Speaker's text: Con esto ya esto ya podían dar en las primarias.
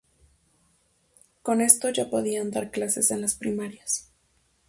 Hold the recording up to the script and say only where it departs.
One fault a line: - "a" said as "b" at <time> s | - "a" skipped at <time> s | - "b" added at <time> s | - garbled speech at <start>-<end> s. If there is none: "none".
- "esto ya" skipped at 2.1 s
- "clases" added at 2.7 s